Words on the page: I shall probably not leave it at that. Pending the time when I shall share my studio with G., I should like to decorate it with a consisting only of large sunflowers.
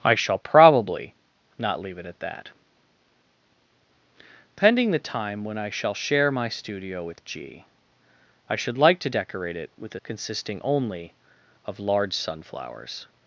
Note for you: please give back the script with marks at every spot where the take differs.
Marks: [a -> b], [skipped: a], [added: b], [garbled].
I shall probably not leave it at that. Pending the time when I shall share my studio with G., I should like to decorate it with a consisting only of large sunflowers.